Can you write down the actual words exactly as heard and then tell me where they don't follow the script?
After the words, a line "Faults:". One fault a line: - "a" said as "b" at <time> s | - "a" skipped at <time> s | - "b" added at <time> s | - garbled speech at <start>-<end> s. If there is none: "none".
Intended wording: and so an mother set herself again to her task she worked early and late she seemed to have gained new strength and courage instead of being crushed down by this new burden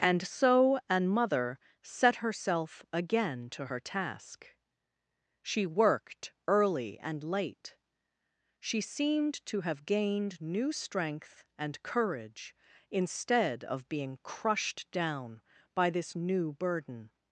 and so an mother set herself again to her task she worked early and late she seemed to have gained new strength and courage instead of being crushed down by this new burden
Faults:
none